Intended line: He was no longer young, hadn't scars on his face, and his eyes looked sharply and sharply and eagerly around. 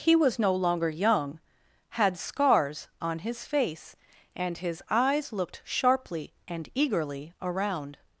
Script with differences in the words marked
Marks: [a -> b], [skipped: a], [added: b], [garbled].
He was no longer young, [hadn't -> had] scars on his face, and his eyes looked sharply and [skipped: sharply and] eagerly around.